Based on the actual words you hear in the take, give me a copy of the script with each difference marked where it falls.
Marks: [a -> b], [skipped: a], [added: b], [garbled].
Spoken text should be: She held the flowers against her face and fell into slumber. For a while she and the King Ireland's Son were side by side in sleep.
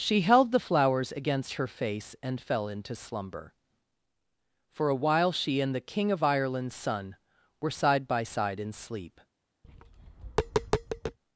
She held the flowers against her face and fell into slumber. For a while she and the King [added: of] Ireland's Son were side by side in sleep.